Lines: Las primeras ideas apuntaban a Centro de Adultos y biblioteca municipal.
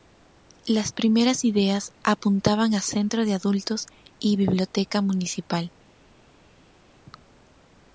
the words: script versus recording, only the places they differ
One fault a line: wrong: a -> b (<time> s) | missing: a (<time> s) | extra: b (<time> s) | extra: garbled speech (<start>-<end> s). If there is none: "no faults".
no faults